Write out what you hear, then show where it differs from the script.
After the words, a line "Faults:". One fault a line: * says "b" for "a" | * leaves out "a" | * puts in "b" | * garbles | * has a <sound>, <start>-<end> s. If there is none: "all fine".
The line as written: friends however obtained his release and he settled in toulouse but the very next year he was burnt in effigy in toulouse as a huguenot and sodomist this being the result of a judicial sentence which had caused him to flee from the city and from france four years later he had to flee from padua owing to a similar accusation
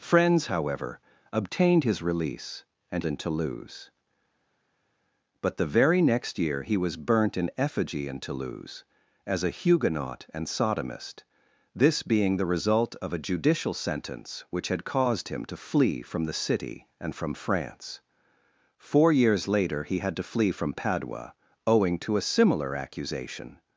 friends however obtained his release and in toulouse but the very next year he was burnt in effigy in toulouse as a huguenot and sodomist this being the result of a judicial sentence which had caused him to flee from the city and from france four years later he had to flee from padua owing to a similar accusation
Faults:
* leaves out "he settled"